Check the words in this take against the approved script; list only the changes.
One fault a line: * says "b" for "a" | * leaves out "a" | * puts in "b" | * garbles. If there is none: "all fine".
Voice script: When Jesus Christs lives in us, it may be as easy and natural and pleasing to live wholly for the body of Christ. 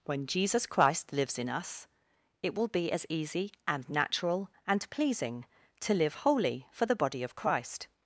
* says "Christ" for "Christs"
* says "will" for "may"